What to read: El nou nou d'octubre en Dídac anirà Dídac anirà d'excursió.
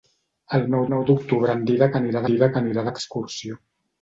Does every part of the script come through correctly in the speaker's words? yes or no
yes